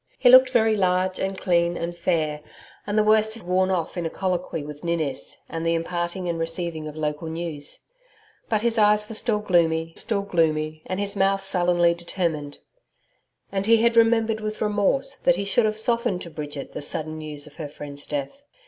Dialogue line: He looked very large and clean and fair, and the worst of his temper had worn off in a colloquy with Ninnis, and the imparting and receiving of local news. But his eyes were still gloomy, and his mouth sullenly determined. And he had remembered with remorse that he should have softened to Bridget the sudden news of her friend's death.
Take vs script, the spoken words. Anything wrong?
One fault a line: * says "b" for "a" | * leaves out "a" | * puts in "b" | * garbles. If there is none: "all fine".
* leaves out "his temper had"
* puts in "still gloomy"